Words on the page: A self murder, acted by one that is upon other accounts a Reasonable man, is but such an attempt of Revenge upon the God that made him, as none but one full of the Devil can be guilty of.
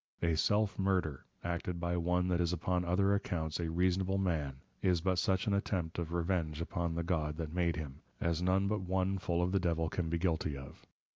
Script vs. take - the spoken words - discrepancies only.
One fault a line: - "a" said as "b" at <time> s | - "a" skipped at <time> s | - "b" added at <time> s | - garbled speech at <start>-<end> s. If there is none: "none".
none